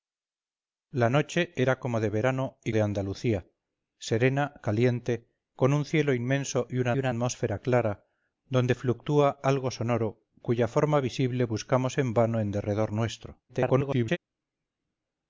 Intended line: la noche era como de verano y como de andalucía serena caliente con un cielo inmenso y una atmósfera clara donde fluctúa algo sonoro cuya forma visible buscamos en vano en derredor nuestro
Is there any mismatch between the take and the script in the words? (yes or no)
yes